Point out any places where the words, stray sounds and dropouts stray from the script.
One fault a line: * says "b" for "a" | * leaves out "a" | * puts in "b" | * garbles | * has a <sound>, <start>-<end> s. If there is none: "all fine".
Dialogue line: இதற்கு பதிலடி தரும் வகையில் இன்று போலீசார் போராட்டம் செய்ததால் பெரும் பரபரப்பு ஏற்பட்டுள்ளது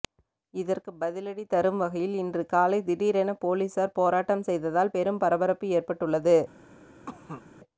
* puts in "காலை திடீரென"
* has a cough, 7.1-7.4 s